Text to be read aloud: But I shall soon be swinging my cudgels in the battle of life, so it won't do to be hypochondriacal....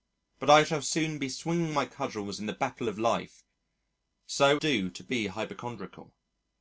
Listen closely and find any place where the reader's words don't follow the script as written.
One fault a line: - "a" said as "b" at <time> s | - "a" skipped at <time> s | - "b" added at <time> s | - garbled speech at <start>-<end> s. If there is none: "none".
- "it won't" skipped at 4.6 s